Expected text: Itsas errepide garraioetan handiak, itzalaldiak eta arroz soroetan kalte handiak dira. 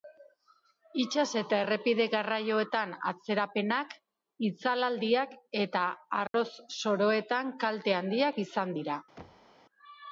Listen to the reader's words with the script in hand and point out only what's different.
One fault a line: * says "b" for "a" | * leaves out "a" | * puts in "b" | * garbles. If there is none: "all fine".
* puts in "eta"
* says "atzerapenak" for "handiak"
* puts in "izan"